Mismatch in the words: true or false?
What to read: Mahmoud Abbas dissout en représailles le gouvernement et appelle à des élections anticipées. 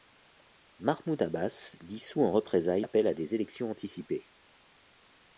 true